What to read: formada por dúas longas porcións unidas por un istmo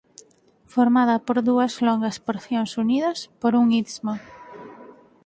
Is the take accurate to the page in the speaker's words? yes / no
yes